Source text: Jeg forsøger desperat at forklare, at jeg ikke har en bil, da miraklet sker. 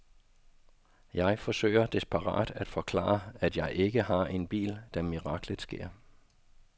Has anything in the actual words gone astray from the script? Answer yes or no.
no